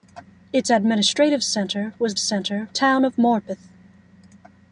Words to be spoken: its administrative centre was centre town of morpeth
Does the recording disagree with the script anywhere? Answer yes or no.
no